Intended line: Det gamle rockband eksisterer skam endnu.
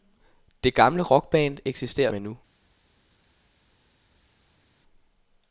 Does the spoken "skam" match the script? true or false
false